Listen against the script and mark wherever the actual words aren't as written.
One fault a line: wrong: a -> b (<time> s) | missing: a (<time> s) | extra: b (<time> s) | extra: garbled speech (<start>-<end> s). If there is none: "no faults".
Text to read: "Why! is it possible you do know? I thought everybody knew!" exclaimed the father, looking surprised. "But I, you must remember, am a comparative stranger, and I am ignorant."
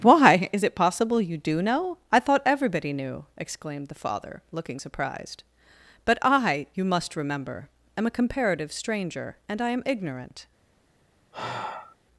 no faults